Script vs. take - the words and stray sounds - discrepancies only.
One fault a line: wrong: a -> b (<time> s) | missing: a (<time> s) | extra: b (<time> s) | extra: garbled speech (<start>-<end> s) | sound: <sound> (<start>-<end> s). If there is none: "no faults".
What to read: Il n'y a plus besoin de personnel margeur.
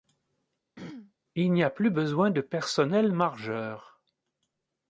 sound: throat clearing (0.8-1.1 s)